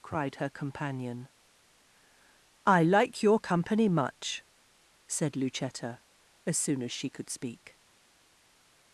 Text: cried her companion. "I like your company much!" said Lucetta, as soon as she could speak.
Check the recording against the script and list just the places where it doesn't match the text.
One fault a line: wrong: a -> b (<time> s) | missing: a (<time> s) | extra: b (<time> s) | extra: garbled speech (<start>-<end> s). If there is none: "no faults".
no faults